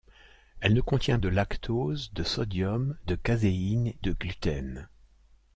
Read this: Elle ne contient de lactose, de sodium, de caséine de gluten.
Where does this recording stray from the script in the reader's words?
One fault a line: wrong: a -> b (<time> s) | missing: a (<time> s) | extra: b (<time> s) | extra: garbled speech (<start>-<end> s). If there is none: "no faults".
no faults